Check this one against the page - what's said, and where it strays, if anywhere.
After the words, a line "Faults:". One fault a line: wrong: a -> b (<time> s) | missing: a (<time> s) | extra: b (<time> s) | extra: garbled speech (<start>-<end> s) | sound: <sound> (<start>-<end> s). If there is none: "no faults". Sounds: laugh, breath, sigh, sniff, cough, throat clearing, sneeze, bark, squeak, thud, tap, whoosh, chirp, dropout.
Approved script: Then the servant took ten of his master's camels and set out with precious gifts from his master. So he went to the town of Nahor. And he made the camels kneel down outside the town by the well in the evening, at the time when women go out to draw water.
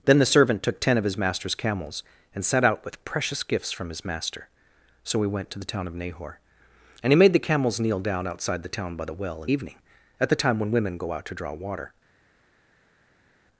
Then the servant took ten of his master's camels and set out with precious gifts from his master. So he went to the town of Nahor. And he made the camels kneel down outside the town by the well in evening, at the time when women go out to draw water.
Faults:
missing: the (9.5 s)